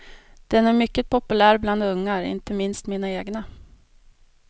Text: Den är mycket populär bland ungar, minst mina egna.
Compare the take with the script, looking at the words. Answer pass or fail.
fail